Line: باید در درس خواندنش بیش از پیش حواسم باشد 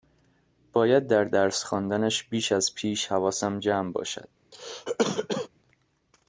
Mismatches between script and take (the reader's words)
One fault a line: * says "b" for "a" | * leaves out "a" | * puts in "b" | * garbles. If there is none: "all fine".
* puts in "جمع"